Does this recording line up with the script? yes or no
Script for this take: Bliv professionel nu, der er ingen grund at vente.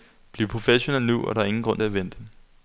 yes